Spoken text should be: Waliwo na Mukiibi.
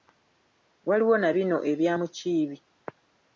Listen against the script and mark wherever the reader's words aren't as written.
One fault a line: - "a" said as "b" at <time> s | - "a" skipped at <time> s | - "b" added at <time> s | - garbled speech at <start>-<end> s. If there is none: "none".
- "bino ebya" added at 1.4 s